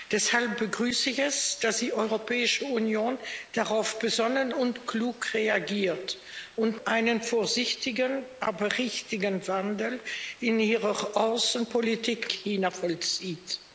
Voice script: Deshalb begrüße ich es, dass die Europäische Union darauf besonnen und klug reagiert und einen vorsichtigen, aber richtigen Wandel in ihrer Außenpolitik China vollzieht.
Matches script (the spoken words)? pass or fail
pass